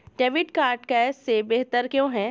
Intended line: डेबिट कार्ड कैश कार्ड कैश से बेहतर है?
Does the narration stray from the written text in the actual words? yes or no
yes